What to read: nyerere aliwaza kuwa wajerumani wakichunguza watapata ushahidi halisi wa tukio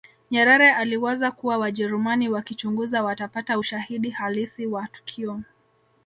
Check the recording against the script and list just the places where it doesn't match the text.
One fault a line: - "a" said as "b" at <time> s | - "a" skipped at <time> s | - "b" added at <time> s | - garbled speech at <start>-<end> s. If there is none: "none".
none